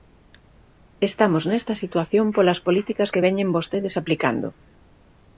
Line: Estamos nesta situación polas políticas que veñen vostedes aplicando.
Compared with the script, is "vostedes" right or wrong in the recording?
right